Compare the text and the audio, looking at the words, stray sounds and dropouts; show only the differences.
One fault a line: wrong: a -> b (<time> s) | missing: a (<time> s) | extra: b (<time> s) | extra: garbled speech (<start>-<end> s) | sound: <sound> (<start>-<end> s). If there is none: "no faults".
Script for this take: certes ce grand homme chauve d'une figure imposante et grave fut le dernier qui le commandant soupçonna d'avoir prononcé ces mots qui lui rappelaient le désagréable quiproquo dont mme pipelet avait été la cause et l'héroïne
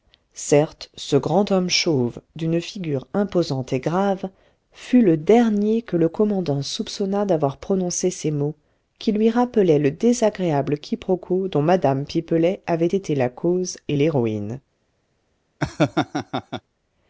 wrong: qui -> que (5.8 s)
sound: laugh (15.6-16.6 s)